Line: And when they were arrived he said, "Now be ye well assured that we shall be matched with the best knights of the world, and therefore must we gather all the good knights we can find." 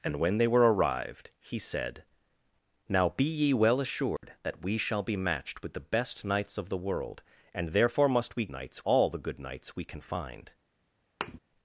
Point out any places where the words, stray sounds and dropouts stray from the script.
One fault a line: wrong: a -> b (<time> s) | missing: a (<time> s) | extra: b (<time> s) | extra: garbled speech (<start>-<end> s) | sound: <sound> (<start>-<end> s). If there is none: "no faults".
sound: dropout (4.2-4.2 s)
wrong: gather -> knights (8.5 s)
sound: thud (11.2-11.4 s)